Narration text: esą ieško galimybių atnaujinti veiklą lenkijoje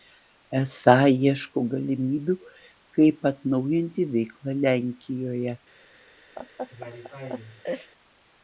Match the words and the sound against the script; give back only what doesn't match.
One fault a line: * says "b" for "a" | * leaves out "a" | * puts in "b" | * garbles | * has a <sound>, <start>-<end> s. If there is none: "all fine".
* puts in "kaip"
* has a laugh, 6.4-7.9 s